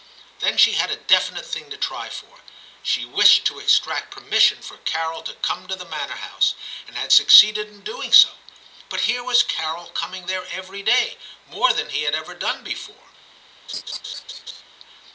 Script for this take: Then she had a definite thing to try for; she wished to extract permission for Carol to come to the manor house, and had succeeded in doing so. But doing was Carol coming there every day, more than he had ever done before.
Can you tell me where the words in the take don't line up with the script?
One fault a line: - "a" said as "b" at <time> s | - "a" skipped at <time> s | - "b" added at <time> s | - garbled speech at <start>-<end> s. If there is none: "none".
- "doing" said as "here" at 9.0 s